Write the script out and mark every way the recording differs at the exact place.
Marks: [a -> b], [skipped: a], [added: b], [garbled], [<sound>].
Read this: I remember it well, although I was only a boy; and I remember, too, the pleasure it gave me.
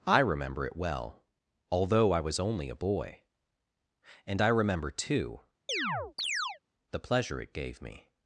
I remember it well, although I was only a boy; and I remember, too, [chirp] the pleasure it gave me.